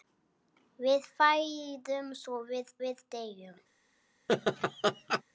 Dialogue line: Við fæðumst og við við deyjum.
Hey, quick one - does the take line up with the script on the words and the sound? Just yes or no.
no